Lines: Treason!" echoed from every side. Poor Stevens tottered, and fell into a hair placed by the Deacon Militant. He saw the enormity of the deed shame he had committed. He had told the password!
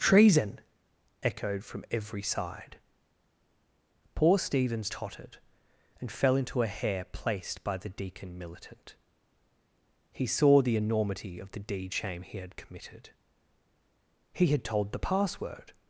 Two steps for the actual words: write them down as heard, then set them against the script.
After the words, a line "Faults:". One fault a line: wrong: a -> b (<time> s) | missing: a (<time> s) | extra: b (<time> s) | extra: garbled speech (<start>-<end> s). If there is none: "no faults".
Treason!" echoed from every side. Poor Stevens tottered, and fell into a hair placed by the Deacon Militant. He saw the enormity of the deed shame he had committed. He had told the password!
Faults:
no faults